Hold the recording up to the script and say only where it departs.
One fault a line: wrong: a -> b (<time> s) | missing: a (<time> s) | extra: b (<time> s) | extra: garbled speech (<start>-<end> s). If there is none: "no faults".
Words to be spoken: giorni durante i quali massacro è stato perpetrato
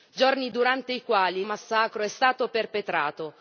no faults